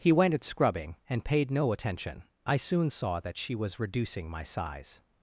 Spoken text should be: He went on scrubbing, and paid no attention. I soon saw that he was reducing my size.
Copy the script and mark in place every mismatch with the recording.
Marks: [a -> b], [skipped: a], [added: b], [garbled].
He went [on -> at] scrubbing, and paid no attention. I soon saw that [he -> she] was reducing my size.